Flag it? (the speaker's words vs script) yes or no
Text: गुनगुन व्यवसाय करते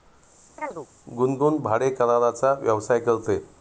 yes